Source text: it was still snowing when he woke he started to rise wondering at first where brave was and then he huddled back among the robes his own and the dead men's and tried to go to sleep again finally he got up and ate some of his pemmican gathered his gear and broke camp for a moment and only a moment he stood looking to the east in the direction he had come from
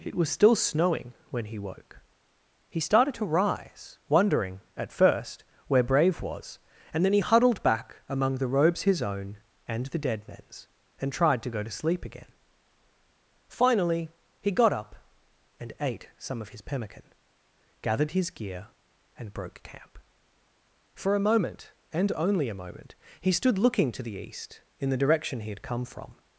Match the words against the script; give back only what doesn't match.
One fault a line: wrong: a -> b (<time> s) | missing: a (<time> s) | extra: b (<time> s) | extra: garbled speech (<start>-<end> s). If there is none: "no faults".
no faults